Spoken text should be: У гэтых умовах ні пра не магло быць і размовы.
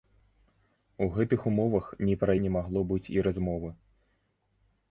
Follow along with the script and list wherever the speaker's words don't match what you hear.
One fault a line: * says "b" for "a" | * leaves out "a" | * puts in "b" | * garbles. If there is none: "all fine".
all fine